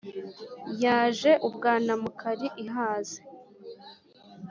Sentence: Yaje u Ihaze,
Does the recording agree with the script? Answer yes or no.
no